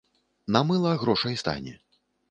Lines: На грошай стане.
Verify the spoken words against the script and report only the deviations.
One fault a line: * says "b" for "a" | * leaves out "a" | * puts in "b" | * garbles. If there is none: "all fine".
* puts in "мыла"